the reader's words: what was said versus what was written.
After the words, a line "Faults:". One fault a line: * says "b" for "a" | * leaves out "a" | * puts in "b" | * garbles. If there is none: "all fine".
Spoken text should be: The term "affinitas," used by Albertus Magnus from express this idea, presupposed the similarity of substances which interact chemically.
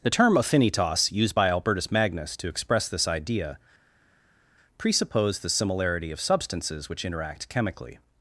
The term "affinitas," used by Albertus Magnus to express this idea, presupposed the similarity of substances which interact chemically.
Faults:
* says "to" for "from"